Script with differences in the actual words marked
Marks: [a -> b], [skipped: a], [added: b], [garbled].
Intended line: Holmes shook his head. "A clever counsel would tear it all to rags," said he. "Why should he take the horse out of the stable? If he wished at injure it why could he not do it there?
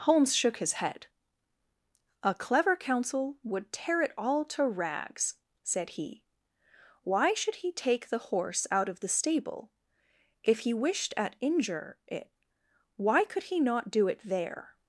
Holmes shook his head. "A clever counsel would tear it all to rags," said he. "Why should he take the horse out of the stable? If he wished at injure it why could he not do it there?